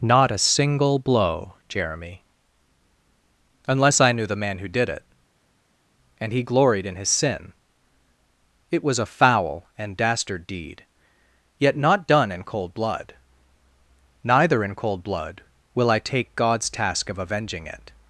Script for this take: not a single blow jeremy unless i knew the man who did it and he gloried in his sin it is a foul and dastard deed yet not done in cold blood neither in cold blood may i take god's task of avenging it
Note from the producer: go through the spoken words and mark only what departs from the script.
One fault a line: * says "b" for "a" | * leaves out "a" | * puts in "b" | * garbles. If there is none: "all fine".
* says "was" for "is"
* says "will" for "may"